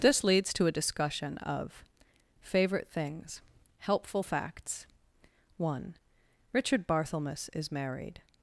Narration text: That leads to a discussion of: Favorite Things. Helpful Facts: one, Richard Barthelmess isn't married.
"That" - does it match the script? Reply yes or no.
no